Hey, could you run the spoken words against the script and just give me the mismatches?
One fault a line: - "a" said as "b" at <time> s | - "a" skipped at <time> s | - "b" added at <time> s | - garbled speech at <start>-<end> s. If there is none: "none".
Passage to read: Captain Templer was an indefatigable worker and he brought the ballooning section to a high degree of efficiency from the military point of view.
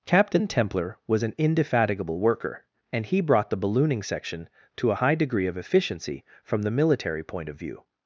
none